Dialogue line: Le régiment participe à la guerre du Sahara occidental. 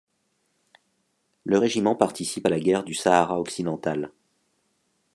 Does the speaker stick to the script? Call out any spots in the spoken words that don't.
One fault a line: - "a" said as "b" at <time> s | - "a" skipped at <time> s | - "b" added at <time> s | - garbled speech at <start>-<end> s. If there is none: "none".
none